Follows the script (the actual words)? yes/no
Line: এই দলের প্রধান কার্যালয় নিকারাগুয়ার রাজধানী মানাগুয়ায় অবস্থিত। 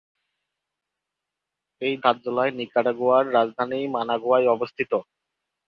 no